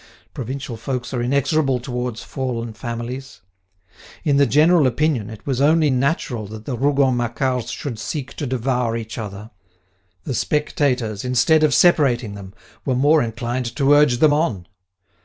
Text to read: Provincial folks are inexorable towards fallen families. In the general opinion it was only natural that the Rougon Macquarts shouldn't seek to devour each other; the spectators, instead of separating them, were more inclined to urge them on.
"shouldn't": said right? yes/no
no